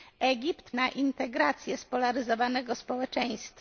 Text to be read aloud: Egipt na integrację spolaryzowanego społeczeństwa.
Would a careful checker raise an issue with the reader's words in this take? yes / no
no